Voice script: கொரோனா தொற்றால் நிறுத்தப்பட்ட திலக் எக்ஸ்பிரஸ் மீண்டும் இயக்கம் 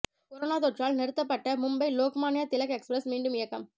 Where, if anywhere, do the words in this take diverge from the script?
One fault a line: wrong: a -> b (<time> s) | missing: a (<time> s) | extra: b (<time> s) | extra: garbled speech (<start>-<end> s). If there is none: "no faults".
extra: மும்பை லோக்மான்ய (1.6 s)